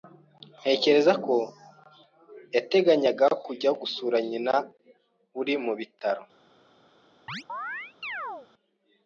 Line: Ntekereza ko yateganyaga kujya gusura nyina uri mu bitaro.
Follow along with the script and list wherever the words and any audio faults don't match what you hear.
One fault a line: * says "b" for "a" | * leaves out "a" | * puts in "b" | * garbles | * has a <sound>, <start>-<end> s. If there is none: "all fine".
* has a chirp, 7.3-8.5 s